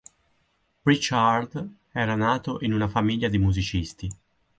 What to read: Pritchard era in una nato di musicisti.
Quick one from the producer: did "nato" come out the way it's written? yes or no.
no